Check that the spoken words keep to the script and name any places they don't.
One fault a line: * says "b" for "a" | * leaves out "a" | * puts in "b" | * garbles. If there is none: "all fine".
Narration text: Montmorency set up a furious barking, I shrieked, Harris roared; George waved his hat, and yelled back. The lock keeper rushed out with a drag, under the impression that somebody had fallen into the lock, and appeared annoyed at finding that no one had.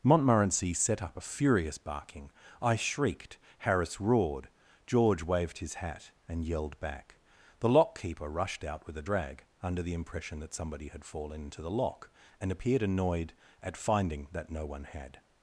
all fine